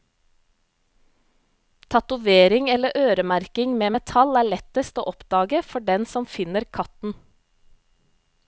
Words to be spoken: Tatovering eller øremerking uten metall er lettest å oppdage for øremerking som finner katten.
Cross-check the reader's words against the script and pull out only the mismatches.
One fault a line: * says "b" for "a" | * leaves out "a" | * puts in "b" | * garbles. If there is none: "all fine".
* says "med" for "uten"
* says "den" for "øremerking"